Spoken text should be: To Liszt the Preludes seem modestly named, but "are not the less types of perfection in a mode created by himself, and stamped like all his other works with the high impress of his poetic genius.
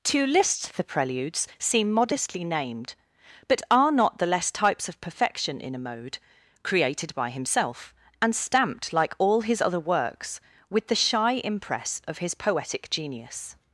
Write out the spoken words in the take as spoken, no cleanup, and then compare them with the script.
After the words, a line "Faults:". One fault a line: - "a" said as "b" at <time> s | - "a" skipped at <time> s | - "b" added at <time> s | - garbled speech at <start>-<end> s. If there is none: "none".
To Liszt the Preludes seem modestly named, but "are not the less types of perfection in a mode created by himself, and stamped like all his other works with the shy impress of his poetic genius.
Faults:
- "high" said as "shy" at 11.0 s